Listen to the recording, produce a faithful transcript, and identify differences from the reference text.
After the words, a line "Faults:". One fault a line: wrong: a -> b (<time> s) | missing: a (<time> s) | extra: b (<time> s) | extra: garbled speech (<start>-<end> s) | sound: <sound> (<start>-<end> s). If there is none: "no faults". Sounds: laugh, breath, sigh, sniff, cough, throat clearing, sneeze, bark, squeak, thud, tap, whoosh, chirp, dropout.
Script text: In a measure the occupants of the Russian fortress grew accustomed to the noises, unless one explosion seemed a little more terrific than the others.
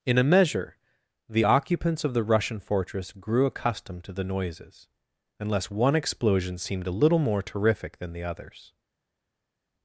In a measure the occupants of the Russian fortress grew accustomed to the noises, unless one explosion seemed a little more terrific than the others.
Faults:
no faults